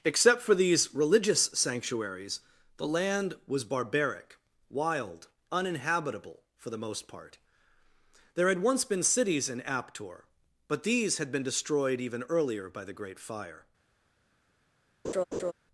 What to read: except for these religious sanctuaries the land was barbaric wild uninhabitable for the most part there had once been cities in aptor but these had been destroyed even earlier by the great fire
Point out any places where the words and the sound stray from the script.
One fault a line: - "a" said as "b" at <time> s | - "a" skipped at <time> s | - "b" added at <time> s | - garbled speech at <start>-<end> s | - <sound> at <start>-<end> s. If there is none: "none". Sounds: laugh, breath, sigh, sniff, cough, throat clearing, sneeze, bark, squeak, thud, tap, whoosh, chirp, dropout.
- laugh at 15.0-15.5 s